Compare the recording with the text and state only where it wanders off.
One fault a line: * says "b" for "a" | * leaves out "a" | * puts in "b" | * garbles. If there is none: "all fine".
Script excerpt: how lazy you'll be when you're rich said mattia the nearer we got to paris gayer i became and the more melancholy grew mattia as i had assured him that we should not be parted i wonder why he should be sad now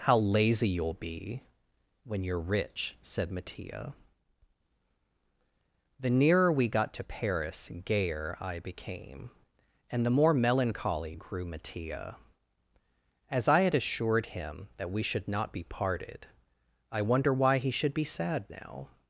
all fine